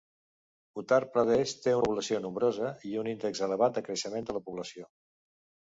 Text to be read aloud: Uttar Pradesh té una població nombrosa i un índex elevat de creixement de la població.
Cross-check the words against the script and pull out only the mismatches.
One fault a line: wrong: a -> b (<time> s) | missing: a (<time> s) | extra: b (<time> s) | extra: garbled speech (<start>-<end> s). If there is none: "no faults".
missing: una (1.8 s)